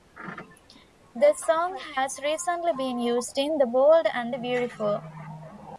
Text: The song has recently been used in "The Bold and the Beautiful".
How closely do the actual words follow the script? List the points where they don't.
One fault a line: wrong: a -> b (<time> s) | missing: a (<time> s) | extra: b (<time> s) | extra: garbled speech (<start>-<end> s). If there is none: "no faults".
no faults